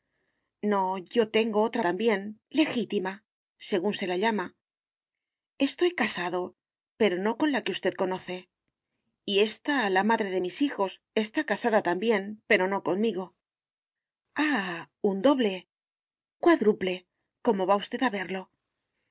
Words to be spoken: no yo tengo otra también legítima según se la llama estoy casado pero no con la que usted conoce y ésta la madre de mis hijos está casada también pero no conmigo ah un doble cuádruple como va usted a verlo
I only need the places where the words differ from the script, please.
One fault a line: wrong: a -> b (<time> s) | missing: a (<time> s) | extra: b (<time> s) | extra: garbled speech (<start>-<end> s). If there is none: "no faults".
no faults